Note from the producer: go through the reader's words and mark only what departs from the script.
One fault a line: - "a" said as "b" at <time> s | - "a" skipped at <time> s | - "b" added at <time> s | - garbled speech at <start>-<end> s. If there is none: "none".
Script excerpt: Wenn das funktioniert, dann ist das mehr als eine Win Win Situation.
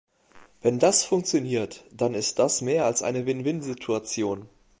none